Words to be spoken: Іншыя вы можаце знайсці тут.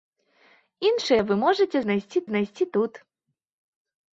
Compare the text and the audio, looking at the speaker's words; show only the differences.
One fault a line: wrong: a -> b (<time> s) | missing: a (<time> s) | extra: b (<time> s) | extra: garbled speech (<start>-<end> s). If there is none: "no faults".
extra: знайсці (2.3 s)